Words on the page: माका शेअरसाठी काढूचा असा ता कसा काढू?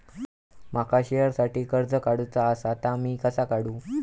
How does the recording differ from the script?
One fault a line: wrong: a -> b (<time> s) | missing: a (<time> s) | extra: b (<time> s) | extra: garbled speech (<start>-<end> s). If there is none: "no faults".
extra: कर्ज (1.7 s)
extra: मी (3.0 s)